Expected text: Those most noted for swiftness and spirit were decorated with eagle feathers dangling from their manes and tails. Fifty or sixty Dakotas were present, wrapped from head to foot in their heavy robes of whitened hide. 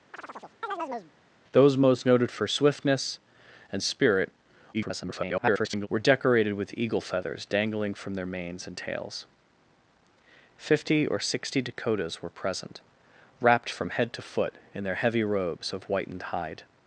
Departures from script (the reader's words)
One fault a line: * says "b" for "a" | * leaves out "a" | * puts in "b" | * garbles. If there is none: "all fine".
* garbles